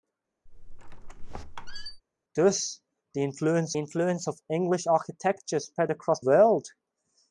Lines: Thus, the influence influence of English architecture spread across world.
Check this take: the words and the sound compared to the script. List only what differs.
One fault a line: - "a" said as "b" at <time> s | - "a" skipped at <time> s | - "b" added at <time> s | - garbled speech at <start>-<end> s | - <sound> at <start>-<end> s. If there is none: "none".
- squeak at 0.5-2.0 s